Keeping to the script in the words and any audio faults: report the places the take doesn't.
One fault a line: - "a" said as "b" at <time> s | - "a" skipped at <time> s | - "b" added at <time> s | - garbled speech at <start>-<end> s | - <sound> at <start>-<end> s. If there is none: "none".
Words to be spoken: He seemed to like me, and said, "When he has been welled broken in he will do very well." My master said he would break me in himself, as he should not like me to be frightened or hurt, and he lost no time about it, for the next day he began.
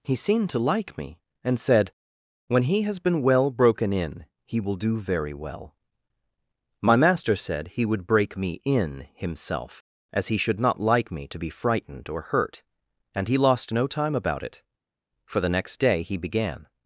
- "welled" said as "well" at 3.2 s